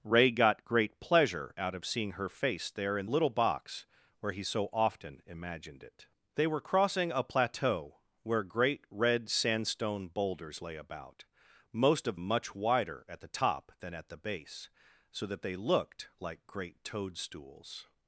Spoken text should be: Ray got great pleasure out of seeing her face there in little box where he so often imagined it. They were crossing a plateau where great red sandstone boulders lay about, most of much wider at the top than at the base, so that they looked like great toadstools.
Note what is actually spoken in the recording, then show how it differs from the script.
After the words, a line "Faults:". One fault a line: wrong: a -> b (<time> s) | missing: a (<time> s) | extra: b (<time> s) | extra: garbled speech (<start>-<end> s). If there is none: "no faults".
Ray got great pleasure out of seeing her face there in little box where he so often imagined it. They were crossing a plateau where great red sandstone boulders lay about, most of much wider at the top than at the base, so that they looked like great toadstools.
Faults:
no faults